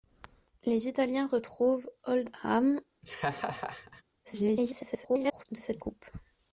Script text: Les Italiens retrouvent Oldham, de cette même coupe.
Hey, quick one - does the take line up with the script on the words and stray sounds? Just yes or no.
no